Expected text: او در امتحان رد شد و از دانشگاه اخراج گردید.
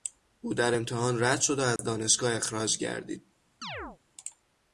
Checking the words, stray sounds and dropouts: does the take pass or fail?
fail